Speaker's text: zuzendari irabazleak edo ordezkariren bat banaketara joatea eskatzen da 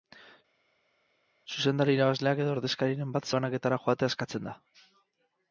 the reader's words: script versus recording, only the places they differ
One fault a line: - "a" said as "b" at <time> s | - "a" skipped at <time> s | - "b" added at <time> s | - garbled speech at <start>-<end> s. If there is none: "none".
none